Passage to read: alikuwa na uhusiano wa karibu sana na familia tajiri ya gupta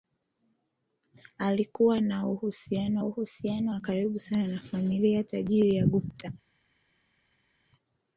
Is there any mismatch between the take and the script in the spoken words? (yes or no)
yes